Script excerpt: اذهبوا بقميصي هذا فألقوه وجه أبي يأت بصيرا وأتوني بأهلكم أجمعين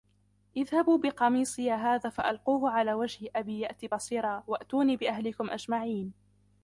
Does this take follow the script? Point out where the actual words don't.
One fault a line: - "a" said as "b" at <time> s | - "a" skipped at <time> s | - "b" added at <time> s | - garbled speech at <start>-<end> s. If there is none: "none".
- "على" added at 2.7 s